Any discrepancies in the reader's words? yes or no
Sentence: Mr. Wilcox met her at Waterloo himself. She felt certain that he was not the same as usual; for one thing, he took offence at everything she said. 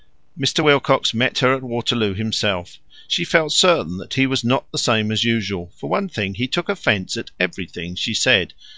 no